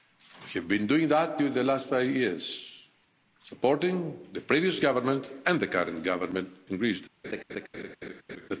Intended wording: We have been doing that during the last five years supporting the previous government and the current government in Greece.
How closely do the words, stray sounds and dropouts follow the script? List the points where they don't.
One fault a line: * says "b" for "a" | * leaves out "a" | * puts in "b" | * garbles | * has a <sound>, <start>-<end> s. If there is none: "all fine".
* has a laugh, 7.2-8.5 s